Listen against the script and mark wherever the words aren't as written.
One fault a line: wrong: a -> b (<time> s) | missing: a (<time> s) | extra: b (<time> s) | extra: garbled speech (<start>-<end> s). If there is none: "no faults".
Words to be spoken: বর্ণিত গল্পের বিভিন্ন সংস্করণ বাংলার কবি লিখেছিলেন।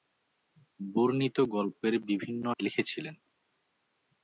missing: সংস্করণ বাংলার কবি (2.4 s)